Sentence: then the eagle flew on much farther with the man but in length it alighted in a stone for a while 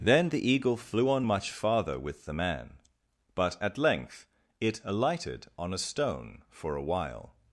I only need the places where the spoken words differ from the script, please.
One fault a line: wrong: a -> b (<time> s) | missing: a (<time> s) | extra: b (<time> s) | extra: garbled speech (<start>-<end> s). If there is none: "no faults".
wrong: in -> at (3.6 s)
wrong: in -> on (5.6 s)